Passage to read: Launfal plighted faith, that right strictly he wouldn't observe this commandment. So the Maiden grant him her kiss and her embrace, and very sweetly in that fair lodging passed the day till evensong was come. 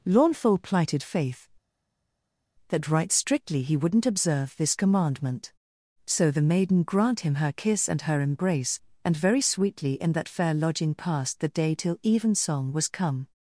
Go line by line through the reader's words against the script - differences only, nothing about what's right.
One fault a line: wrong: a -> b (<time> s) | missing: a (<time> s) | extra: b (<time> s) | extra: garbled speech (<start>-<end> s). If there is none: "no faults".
no faults